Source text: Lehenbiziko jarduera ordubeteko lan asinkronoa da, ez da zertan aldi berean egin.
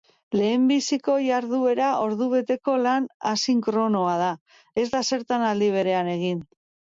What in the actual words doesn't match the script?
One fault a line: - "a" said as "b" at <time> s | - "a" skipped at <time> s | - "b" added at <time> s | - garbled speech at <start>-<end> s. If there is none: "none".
none